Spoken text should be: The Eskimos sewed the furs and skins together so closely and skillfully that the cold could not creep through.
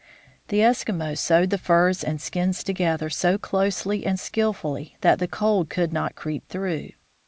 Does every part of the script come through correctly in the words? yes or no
yes